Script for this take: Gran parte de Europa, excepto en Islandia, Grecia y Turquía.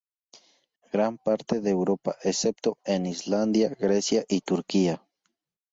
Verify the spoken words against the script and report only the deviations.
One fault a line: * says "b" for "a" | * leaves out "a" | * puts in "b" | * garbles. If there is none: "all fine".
all fine